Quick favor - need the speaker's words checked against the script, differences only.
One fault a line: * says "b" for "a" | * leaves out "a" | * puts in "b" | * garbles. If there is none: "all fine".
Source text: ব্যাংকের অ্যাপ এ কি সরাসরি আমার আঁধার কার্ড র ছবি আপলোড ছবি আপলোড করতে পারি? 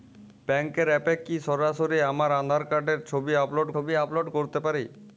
all fine